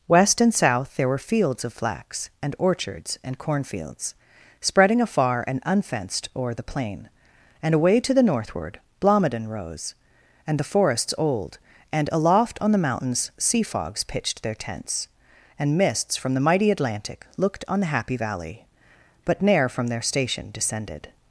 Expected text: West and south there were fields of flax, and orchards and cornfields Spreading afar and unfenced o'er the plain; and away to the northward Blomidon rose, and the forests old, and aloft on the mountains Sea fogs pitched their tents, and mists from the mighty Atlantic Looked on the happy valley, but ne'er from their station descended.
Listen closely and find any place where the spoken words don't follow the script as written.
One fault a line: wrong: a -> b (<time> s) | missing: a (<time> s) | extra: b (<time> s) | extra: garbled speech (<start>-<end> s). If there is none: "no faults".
no faults